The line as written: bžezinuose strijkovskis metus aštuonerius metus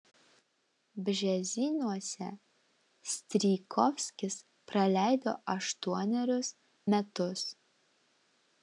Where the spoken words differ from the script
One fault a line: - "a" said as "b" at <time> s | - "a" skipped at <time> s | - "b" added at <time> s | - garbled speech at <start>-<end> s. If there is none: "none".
- "metus" said as "praleido" at 4.7 s